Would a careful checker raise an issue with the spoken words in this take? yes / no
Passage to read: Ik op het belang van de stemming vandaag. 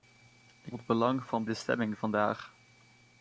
no